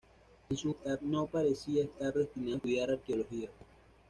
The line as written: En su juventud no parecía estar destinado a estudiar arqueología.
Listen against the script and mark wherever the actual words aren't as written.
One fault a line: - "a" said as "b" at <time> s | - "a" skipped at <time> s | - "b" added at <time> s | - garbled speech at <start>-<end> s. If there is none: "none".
- "juventud" said as "estar" at 0.7 s